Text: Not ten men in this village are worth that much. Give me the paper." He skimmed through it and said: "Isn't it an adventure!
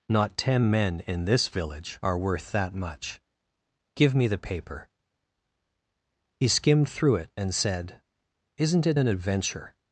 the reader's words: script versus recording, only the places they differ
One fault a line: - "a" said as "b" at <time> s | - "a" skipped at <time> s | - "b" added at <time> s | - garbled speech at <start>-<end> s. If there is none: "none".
none